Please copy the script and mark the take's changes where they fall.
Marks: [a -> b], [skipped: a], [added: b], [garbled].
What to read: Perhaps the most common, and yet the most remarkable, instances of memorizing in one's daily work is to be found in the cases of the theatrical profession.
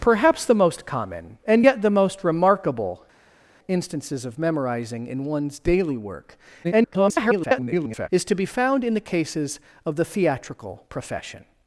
Perhaps the most common, and yet the most remarkable, instances of memorizing in one's daily work [garbled] is to be found in the cases of the theatrical profession.